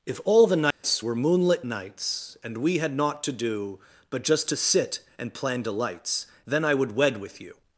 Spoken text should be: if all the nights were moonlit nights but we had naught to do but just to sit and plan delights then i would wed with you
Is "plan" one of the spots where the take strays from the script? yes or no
no